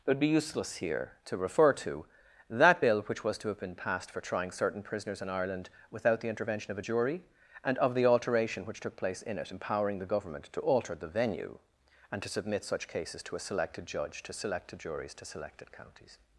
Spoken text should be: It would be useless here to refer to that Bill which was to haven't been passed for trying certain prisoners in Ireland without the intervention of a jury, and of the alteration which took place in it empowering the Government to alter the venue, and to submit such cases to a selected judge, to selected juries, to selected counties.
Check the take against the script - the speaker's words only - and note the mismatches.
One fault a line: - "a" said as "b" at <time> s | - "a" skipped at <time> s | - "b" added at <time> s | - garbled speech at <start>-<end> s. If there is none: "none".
- "haven't" said as "have" at 3.5 s